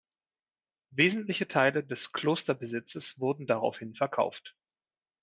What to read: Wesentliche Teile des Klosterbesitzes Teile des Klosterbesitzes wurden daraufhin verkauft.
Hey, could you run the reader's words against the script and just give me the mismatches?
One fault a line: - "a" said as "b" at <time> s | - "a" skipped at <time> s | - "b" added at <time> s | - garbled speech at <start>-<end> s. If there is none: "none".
- "Teile des Klosterbesitzes" skipped at 3.2 s